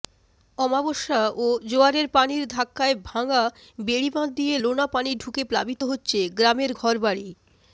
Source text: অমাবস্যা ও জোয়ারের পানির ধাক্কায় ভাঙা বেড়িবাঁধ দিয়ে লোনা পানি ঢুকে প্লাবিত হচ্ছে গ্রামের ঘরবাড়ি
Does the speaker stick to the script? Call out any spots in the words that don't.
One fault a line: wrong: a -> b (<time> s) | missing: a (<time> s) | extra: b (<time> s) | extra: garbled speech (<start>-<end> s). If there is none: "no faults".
no faults